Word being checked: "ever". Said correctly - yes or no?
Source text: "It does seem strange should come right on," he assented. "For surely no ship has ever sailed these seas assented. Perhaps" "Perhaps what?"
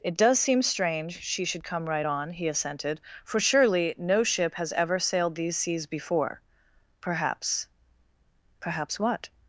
yes